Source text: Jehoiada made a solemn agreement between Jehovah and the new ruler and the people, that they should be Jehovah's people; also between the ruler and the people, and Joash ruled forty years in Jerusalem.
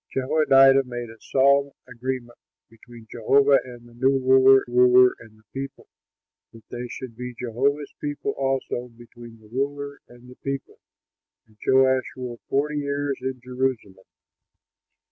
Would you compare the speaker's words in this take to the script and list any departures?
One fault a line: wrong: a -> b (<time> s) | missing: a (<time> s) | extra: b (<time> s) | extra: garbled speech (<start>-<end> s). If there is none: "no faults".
extra: ruler (4.6 s)